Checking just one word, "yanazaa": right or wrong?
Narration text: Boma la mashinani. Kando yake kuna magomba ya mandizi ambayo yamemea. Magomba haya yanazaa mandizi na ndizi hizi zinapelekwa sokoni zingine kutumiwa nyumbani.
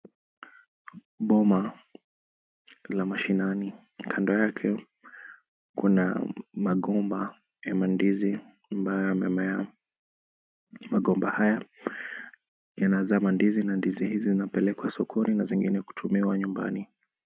right